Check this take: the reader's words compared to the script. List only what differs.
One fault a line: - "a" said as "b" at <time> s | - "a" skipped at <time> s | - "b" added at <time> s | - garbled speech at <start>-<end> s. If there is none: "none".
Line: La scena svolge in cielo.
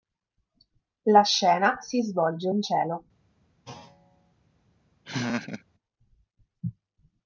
- "si" added at 1.8 s